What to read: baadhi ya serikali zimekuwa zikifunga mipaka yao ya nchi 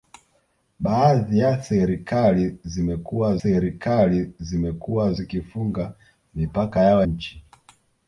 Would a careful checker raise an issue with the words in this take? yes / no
yes